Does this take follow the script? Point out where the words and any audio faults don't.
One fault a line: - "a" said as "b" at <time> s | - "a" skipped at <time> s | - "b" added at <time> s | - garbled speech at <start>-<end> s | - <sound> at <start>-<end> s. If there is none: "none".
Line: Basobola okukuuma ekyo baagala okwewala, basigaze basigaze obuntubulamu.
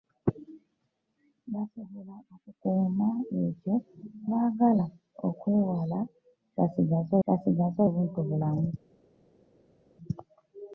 none